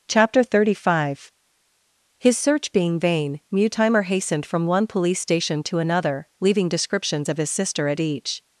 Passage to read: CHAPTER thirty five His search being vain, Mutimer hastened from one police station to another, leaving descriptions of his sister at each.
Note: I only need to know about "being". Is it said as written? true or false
true